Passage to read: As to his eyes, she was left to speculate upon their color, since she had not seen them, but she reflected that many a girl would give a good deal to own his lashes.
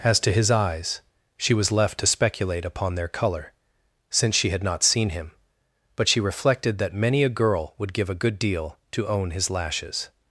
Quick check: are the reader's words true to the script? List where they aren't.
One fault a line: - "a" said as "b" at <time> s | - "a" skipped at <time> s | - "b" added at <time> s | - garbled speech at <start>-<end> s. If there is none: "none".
- "them" said as "him" at 5.1 s